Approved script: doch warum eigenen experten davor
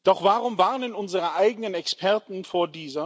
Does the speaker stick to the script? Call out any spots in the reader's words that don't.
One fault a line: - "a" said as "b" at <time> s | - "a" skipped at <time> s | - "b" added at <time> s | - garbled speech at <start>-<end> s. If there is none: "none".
- "warnen unsere" added at 0.6 s